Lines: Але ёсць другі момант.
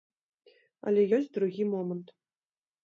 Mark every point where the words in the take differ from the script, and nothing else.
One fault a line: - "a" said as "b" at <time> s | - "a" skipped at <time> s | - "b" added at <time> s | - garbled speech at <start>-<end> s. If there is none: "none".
none